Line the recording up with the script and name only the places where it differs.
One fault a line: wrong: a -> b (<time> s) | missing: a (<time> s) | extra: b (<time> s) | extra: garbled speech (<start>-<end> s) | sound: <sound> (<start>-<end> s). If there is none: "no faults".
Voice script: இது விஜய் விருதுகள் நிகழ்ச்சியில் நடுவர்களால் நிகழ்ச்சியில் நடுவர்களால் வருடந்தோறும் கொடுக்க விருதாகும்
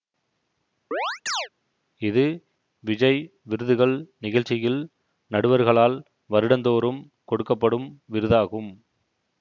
sound: chirp (0.9-1.5 s)
missing: நிகழ்ச்சியில் நடுவர்களால் (6.0 s)
extra: படும் (7.5 s)